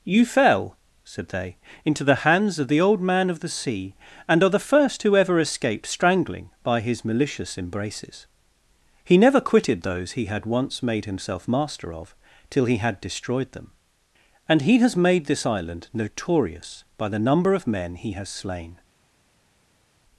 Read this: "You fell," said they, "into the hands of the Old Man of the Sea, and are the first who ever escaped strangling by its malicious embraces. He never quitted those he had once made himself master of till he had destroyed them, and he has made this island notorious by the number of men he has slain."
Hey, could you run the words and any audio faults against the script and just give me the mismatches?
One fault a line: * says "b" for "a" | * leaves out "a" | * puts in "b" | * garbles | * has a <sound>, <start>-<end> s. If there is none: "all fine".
* says "his" for "its"